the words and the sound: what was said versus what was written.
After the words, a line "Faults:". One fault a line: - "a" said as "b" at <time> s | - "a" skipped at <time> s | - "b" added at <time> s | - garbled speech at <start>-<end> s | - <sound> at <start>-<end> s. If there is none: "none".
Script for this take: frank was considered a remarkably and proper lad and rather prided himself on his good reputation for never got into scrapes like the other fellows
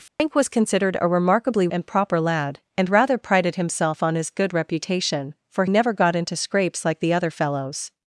frank was considered a remarkably and proper lad and rather prided himself on his good reputation for never got into scrapes like the other fellows
Faults:
- dropout at 0.1-0.2 s